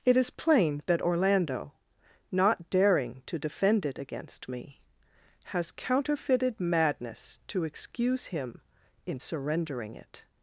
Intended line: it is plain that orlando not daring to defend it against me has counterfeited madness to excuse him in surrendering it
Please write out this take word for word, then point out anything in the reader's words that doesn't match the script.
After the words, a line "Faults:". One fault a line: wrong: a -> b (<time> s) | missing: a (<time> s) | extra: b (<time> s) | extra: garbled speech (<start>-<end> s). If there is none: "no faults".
it is plain that orlando not daring to defend it against me has counterfeited madness to excuse him in surrendering it
Faults:
no faults